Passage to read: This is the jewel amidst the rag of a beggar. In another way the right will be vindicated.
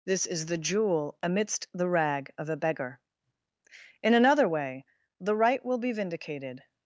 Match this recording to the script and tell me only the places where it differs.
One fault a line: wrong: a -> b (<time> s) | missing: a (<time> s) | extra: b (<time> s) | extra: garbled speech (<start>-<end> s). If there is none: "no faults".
no faults